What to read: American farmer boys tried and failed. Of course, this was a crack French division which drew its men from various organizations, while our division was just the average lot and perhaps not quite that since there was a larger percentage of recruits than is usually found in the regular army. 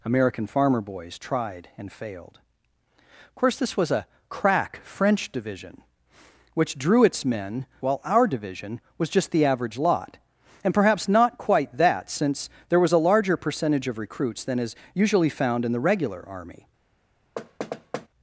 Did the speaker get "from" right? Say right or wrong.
wrong